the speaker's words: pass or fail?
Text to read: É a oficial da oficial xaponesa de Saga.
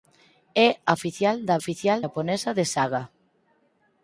pass